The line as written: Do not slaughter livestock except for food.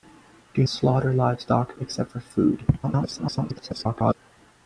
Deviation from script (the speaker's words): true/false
true